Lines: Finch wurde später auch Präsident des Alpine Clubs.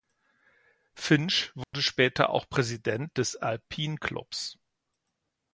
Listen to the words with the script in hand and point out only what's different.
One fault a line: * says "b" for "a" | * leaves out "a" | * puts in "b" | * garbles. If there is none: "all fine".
all fine